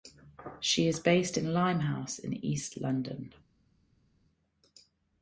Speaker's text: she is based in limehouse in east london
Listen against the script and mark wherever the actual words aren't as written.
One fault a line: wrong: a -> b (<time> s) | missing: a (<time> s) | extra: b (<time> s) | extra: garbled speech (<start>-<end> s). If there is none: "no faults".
no faults